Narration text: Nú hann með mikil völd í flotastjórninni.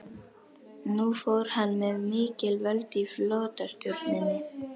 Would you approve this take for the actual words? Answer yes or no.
no